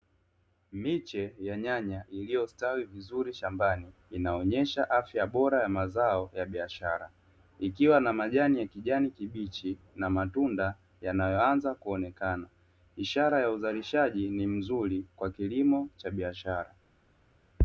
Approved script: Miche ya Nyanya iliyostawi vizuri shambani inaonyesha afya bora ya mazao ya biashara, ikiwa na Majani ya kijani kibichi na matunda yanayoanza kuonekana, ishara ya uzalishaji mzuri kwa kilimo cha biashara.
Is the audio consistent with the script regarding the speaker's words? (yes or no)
no